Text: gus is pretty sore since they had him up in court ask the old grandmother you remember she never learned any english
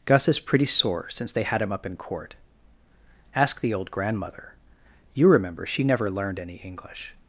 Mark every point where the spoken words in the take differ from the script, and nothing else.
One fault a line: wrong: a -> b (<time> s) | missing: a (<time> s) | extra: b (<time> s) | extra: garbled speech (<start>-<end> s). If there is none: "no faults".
no faults